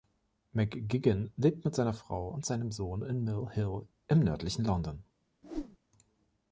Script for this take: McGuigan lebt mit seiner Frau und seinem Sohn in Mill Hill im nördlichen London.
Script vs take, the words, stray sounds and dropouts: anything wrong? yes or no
yes